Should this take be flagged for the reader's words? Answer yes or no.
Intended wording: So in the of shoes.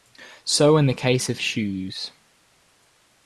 yes